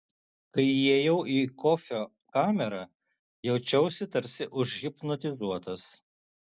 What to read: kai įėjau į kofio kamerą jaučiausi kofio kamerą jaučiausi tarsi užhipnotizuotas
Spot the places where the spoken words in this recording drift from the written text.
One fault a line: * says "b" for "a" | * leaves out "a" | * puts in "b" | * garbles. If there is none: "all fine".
* leaves out "kofio kamerą jaučiausi"